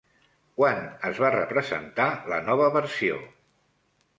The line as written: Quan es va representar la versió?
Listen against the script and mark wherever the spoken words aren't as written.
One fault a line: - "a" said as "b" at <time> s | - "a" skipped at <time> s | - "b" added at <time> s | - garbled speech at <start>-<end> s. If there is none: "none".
- "nova" added at 2.5 s